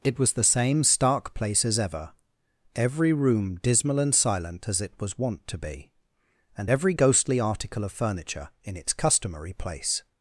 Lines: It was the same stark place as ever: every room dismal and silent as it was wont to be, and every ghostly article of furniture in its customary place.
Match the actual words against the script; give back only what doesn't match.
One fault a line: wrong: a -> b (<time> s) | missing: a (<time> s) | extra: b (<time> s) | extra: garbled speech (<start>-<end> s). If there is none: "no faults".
no faults